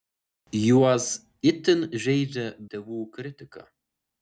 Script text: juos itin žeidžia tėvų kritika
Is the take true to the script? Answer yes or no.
yes